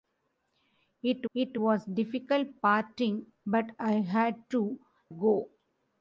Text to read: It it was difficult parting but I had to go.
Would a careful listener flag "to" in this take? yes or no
no